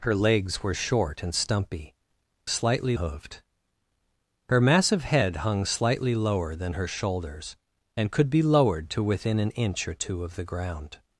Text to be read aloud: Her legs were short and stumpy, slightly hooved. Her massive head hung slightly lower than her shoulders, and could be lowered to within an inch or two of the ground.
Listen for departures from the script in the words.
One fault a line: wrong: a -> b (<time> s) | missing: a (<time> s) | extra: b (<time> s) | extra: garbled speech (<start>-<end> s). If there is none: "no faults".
no faults